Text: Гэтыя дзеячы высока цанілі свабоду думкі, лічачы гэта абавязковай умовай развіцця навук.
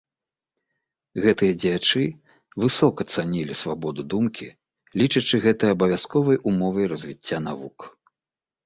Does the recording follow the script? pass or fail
pass